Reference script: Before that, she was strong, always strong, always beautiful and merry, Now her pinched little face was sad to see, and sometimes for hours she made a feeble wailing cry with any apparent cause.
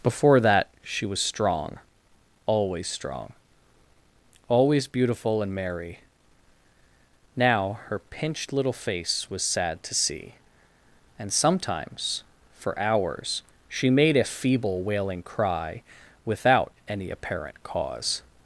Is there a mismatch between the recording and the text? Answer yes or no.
yes